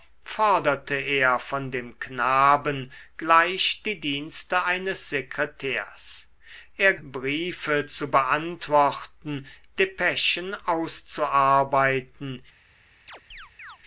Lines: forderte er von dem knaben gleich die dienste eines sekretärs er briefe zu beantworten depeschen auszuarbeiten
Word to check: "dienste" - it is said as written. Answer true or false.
true